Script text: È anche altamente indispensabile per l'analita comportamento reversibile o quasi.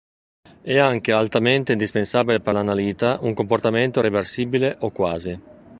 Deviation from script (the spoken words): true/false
true